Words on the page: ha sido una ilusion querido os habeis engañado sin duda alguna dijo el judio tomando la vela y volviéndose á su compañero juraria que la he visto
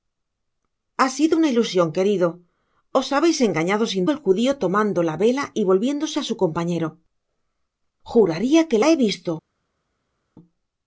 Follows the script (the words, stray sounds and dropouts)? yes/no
no